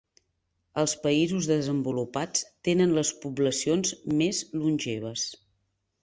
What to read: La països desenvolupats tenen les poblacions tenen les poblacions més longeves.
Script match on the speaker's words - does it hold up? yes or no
no